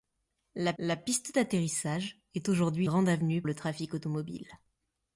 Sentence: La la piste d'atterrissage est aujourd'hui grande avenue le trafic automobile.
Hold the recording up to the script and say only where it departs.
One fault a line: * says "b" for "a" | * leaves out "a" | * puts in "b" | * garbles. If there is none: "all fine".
all fine